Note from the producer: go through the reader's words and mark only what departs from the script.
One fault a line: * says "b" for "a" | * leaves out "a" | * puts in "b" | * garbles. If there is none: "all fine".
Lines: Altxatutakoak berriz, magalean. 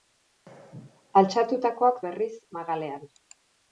all fine